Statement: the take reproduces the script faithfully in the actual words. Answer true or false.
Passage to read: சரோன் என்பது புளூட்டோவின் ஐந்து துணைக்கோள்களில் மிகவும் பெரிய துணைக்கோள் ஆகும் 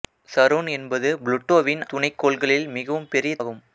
false